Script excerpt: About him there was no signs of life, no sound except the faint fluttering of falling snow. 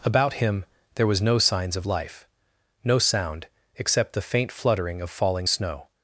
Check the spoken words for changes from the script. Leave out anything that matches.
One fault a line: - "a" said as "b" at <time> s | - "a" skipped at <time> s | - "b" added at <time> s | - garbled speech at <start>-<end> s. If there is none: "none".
none